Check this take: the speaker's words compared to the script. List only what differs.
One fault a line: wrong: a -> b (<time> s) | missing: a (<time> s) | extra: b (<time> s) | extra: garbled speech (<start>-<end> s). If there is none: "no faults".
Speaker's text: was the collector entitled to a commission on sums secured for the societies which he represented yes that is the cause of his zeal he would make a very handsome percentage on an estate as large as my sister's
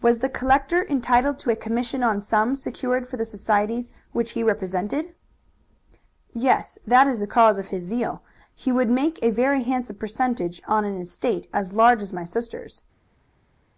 no faults